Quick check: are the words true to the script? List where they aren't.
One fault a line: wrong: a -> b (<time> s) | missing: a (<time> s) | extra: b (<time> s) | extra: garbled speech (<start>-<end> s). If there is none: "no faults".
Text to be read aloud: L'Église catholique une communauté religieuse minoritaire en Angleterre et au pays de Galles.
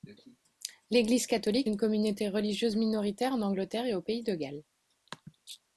no faults